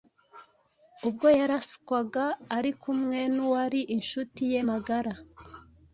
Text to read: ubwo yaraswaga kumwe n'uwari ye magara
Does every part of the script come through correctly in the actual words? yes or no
no